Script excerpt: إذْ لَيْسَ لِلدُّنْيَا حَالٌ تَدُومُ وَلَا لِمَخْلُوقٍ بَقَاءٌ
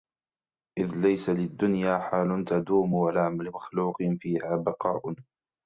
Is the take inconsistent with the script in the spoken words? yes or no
yes